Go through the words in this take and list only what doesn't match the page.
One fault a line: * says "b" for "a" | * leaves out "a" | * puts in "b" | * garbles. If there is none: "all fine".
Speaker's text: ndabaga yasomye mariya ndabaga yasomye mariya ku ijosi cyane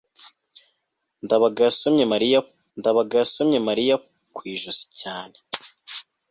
all fine